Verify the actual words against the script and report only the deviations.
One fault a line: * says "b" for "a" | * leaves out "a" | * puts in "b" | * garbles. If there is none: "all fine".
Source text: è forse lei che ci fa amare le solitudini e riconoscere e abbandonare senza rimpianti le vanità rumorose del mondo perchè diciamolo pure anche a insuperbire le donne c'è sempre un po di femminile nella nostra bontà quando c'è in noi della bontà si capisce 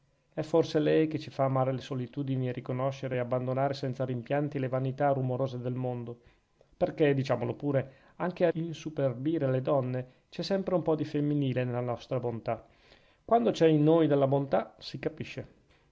all fine